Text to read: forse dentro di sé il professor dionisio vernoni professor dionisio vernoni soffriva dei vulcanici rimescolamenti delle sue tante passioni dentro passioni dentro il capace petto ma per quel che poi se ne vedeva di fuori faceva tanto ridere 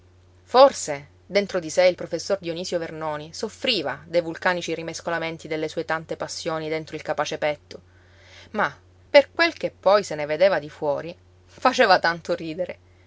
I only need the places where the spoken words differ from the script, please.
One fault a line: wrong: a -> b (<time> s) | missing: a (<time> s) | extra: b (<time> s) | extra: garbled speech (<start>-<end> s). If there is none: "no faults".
missing: professor dionisio vernoni (3.3 s)
missing: passioni dentro (6.9 s)